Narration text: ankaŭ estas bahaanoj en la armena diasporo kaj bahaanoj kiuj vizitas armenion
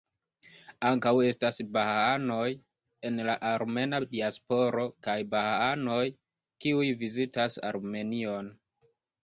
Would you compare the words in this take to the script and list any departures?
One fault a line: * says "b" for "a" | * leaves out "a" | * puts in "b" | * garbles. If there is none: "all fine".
all fine